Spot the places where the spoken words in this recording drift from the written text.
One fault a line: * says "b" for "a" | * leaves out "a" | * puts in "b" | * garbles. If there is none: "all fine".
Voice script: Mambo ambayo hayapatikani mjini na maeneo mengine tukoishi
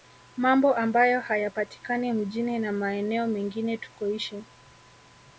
all fine